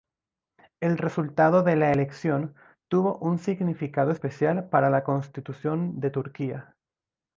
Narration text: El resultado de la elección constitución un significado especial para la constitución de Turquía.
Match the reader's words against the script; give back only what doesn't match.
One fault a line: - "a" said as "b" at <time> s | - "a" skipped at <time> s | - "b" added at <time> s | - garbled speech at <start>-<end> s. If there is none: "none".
- "constitución" said as "tuvo" at 2.9 s